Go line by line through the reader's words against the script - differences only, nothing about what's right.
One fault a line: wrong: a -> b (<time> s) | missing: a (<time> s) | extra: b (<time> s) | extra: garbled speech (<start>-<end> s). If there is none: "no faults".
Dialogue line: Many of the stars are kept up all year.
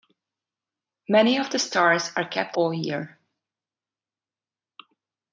missing: up (2.6 s)